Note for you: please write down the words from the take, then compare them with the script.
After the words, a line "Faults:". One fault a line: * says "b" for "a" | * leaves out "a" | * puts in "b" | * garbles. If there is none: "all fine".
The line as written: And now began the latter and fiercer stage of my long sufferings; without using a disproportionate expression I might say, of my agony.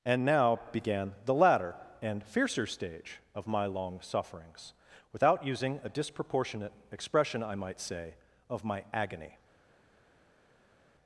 And now began the latter and fiercer stage of my long sufferings; without using a disproportionate expression I might say, of my agony.
Faults:
all fine